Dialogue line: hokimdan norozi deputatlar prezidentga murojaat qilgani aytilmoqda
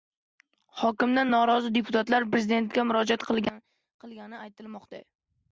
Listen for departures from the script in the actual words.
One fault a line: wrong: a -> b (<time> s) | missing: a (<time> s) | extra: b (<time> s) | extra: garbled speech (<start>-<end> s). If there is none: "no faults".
no faults